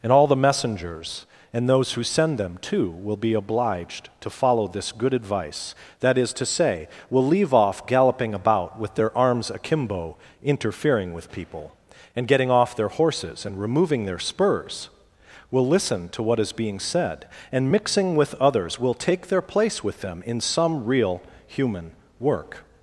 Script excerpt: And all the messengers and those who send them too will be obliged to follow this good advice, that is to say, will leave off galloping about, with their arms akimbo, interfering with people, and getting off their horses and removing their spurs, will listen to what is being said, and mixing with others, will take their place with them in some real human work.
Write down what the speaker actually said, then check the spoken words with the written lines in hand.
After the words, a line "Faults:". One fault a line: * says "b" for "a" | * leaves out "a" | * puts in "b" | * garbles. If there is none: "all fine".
And all the messengers and those who send them too will be obliged to follow this good advice, that is to say, will leave off galloping about, with their arms akimbo, interfering with people, and getting off their horses and removing their spurs, will listen to what is being said, and mixing with others, will take their place with them in some real human work.
Faults:
all fine